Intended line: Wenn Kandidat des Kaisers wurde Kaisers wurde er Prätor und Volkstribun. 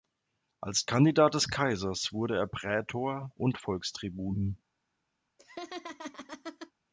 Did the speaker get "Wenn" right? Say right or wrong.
wrong